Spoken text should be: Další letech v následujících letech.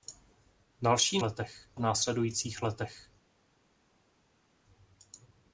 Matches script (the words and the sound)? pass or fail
pass